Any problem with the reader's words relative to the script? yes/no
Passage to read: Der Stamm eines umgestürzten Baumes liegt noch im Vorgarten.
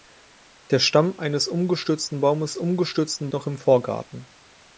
yes